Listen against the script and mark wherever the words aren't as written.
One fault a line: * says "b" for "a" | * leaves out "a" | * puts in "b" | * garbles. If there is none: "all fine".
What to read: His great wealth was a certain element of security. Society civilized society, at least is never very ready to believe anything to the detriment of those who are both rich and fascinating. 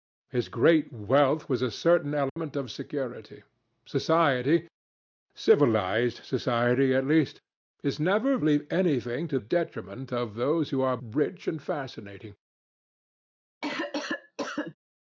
* leaves out "very ready to"
* leaves out "the"
* leaves out "both"